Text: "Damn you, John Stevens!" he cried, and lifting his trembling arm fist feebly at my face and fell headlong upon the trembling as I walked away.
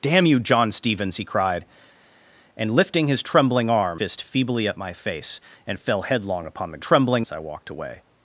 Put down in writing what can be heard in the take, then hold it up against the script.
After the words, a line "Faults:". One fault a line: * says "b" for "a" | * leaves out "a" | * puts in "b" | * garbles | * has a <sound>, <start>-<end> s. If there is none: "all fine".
"Damn you, John Stevens!" he cried, and lifting his trembling arm fist feebly at my face and fell headlong upon the trembling as I walked away.
Faults:
all fine